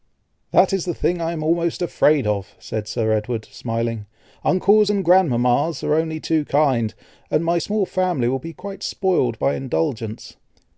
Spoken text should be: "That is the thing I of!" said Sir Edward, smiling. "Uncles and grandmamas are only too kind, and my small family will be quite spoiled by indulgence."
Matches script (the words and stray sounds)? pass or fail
fail